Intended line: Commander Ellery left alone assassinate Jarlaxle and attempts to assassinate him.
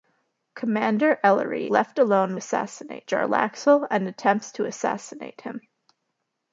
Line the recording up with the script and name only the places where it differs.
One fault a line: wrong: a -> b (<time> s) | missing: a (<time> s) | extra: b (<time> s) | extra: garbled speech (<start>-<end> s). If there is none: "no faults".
no faults